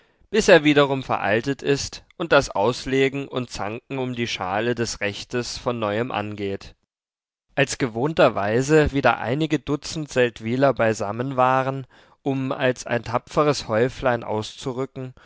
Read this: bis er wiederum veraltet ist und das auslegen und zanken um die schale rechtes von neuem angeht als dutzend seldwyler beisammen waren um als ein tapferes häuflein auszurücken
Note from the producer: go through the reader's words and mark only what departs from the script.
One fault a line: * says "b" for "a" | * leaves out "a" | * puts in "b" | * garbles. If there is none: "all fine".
* puts in "des"
* puts in "gewohnterweise wieder einige"